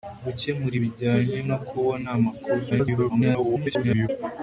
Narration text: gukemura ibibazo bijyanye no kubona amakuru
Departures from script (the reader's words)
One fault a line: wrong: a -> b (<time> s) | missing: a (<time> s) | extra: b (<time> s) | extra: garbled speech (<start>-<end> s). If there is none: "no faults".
missing: ibibazo (0.8 s)
extra: garbled speech (2.7-4.1 s)